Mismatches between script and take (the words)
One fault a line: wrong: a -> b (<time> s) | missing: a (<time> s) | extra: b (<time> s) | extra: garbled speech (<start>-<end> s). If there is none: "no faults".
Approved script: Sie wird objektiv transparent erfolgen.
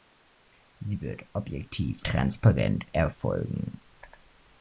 no faults